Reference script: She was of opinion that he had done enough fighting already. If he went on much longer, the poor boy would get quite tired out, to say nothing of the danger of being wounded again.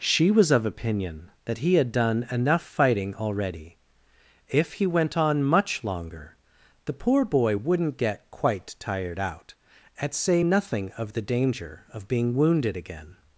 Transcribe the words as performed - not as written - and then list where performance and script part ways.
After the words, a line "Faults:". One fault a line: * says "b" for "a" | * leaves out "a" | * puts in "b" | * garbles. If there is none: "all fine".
She was of opinion that he had done enough fighting already. If he went on much longer, the poor boy wouldn't get quite tired out, at say nothing of the danger of being wounded again.
Faults:
* says "wouldn't" for "would"
* says "at" for "to"